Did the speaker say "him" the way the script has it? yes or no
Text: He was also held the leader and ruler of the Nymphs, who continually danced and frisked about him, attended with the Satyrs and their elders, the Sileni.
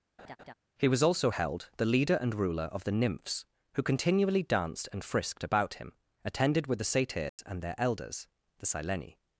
yes